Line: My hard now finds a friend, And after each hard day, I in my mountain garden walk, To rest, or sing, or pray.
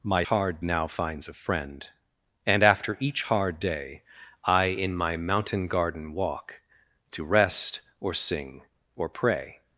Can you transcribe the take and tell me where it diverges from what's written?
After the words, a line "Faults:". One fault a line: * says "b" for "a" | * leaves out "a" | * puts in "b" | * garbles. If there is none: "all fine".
My hard now finds a friend, And after each hard day, I in my mountain garden walk, To rest, or sing, or pray.
Faults:
all fine